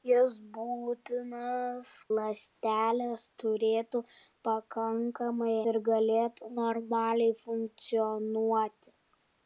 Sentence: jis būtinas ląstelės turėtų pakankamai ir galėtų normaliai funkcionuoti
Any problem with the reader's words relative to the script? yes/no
no